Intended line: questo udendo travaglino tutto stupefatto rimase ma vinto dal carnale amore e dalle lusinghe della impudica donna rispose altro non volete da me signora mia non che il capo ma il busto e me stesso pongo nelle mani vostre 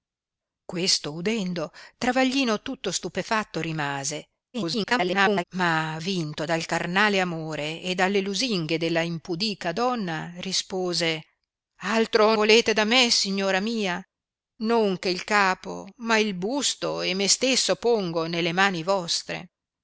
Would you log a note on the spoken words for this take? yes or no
yes